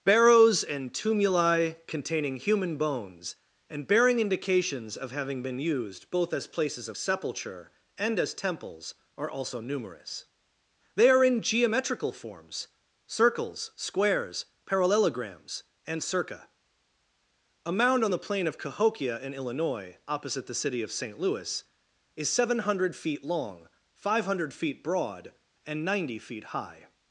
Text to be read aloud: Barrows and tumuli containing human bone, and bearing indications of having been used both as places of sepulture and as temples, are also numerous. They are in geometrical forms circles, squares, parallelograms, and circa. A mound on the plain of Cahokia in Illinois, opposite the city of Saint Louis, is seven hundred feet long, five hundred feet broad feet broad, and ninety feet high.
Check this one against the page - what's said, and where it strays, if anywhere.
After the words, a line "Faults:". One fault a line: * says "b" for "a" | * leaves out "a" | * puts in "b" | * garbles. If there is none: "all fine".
Barrows and tumuli containing human bones, and bearing indications of having been used both as places of sepulture and as temples, are also numerous. They are in geometrical forms circles, squares, parallelograms, and circa. A mound on the plain of Cahokia in Illinois, opposite the city of Saint Louis, is seven hundred feet long, five hundred feet broad, and ninety feet high.
Faults:
* says "bones" for "bone"
* leaves out "feet broad"